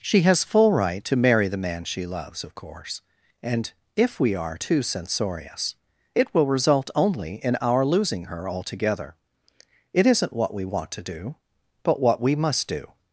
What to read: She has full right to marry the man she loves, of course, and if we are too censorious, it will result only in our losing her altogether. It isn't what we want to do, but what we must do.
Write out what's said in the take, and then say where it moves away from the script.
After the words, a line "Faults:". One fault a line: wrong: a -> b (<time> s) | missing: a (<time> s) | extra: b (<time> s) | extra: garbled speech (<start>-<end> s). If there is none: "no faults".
She has full right to marry the man she loves, of course, and if we are too censorious, it will result only in our losing her altogether. It isn't what we want to do, but what we must do.
Faults:
no faults